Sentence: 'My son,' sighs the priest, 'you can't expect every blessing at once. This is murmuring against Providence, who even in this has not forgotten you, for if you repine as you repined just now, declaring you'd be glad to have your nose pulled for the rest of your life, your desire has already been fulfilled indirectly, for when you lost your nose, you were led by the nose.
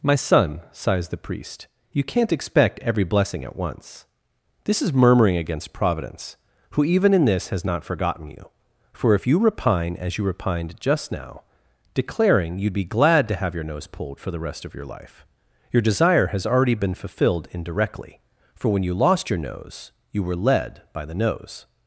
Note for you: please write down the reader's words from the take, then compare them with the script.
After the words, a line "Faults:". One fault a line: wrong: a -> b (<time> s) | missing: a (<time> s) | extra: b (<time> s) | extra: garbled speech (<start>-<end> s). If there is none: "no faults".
'My son,' sighs the priest, 'you can't expect every blessing at once. This is murmuring against Providence, who even in this has not forgotten you, for if you repine as you repined just now, declaring you'd be glad to have your nose pulled for the rest of your life, your desire has already been fulfilled indirectly, for when you lost your nose, you were led by the nose.
Faults:
no faults